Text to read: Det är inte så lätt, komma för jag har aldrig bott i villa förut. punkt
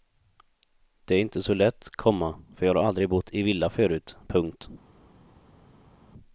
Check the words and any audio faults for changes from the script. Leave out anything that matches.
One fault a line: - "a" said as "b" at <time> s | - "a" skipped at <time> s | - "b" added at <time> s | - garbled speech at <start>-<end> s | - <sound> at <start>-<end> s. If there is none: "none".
none